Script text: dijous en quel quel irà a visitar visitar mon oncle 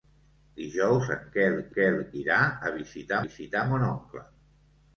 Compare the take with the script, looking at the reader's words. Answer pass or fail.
pass